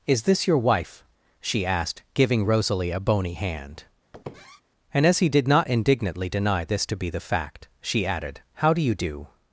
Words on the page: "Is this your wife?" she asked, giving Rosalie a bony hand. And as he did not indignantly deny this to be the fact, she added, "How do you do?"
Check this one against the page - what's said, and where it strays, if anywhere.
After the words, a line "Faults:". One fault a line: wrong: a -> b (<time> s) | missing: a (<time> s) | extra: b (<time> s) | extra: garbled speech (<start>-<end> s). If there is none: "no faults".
"Is this your wife?" she asked, giving Rosalie a bony hand. And as he did not indignantly deny this to be the fact, she added, "How do you do?"
Faults:
no faults